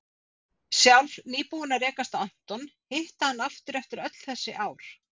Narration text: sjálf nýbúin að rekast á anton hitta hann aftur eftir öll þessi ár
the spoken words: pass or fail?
pass